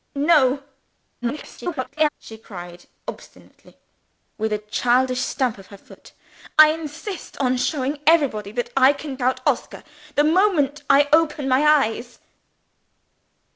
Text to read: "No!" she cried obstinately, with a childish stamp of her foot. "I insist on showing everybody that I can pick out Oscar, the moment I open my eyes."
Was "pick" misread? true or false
true